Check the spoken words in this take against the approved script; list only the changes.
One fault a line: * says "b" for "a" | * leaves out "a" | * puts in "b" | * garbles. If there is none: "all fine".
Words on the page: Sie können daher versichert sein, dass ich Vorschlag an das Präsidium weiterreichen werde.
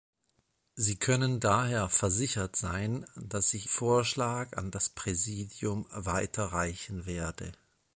all fine